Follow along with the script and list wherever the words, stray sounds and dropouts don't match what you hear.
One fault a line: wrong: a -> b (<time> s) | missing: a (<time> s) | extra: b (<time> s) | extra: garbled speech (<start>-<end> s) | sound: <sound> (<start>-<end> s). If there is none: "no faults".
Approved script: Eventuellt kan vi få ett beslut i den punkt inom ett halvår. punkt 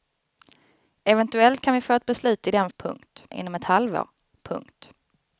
no faults